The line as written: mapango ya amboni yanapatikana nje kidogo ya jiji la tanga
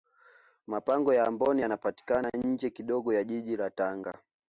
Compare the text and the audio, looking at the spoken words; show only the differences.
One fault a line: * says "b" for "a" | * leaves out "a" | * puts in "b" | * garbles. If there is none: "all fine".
all fine